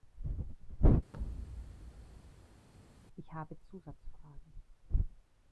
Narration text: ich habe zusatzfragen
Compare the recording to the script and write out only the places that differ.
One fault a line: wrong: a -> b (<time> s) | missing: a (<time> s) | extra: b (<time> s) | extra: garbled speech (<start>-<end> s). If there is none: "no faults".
no faults